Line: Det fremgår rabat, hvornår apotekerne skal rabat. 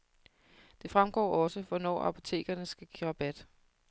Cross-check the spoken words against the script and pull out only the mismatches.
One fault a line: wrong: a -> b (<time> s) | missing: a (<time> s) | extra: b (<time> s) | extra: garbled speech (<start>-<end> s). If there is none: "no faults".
wrong: rabat -> også (1.4 s)
extra: give (2.9 s)